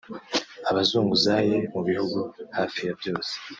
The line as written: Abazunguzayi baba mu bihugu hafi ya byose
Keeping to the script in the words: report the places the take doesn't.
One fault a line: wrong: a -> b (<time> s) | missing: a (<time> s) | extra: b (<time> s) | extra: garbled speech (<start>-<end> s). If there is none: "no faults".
missing: baba (1.5 s)